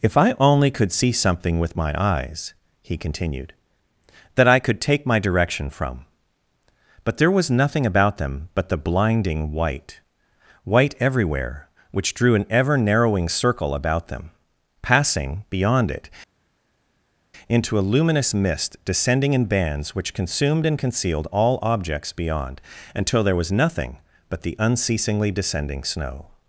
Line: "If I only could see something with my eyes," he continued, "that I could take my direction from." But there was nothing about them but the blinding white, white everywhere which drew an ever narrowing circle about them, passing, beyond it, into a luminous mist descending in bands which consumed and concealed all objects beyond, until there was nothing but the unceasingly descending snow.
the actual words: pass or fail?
pass